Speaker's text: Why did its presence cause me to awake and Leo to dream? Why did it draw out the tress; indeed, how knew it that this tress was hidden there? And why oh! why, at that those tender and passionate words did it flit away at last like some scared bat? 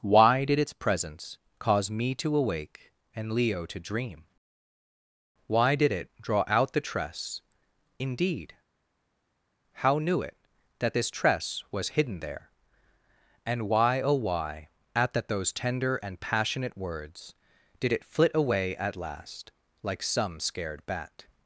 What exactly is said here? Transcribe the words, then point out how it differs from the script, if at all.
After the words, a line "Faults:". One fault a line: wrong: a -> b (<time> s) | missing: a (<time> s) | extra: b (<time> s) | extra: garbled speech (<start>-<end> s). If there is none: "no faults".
Why did its presence cause me to awake and Leo to dream? Why did it draw out the tress; indeed, how knew it that this tress was hidden there? And why oh! why, at that those tender and passionate words did it flit away at last like some scared bat?
Faults:
no faults